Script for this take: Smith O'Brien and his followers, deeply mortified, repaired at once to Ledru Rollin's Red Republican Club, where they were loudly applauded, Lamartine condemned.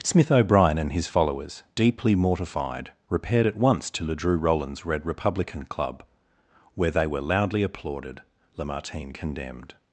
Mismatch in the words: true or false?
false